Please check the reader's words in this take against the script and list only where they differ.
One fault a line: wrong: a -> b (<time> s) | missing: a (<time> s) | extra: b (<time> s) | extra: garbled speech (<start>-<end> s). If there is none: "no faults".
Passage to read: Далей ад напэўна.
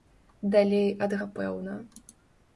no faults